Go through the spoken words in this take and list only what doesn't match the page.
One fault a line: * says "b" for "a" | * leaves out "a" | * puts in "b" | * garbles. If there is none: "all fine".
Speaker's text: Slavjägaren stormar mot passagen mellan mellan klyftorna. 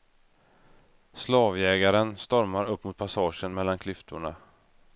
* puts in "upp"
* leaves out "mellan"